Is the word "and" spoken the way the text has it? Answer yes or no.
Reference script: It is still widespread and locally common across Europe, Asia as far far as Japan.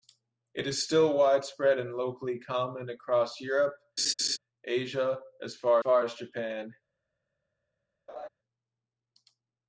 yes